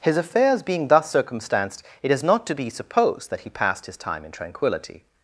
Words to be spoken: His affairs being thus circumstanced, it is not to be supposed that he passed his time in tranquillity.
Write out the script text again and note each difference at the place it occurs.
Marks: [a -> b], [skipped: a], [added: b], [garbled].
His affairs being thus circumstanced, it is not to be supposed that he passed his time in tranquillity.